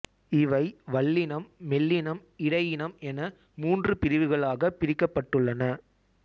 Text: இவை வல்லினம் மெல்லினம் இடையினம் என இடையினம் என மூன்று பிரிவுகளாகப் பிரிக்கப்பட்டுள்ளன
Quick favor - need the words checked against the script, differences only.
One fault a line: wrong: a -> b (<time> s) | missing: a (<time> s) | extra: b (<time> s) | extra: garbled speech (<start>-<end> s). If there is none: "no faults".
missing: இடையினம் என (3.2 s)